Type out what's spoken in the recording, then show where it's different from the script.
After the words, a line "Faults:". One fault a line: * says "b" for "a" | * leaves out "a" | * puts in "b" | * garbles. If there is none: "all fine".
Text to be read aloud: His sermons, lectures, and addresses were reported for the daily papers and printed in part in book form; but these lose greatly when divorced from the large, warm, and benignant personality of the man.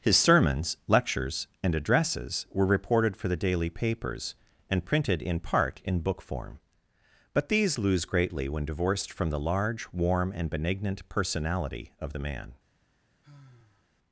His sermons, lectures, and addresses were reported for the daily papers and printed in part in book form; but these lose greatly when divorced from the large, warm, and benignant personality of the man.
Faults:
all fine